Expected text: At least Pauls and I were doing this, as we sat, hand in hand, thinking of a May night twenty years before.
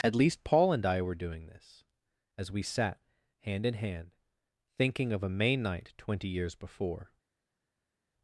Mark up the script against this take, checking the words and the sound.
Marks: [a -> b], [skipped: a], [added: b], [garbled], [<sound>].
At least [Pauls -> Paul] and I were doing this, as we sat, hand in hand, thinking of a May night twenty years before.